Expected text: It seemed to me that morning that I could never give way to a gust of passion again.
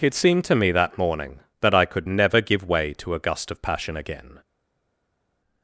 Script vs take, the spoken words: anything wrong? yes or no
no